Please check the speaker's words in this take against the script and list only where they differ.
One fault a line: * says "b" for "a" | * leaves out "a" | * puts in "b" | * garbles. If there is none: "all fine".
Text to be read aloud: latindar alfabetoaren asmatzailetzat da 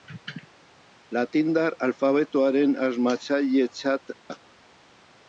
all fine